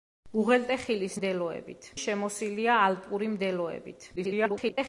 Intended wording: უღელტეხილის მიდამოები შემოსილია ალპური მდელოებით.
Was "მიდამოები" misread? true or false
true